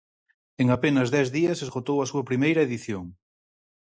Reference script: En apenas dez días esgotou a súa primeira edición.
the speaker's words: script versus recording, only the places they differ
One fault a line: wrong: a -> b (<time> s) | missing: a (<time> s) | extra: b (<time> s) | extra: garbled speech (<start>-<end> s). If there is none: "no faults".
no faults